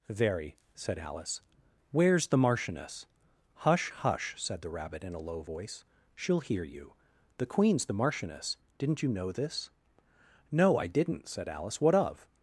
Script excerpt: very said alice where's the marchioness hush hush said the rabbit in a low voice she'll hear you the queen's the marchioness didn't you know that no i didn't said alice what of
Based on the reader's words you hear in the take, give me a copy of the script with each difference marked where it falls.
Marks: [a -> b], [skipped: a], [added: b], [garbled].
very said alice where's the marchioness hush hush said the rabbit in a low voice she'll hear you the queen's the marchioness didn't you know [that -> this] no i didn't said alice what of